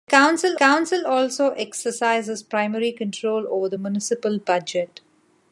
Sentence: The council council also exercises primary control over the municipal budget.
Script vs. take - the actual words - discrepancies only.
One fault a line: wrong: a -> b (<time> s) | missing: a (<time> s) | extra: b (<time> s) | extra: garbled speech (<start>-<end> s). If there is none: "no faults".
no faults